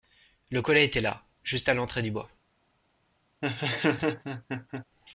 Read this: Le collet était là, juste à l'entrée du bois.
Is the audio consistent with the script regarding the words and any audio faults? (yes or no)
no